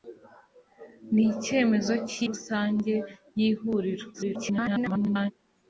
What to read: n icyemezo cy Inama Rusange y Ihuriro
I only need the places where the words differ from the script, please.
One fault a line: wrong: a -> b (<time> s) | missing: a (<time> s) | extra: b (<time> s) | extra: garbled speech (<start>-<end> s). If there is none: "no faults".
missing: Inama (2.2 s)
extra: garbled speech (4.1-5.3 s)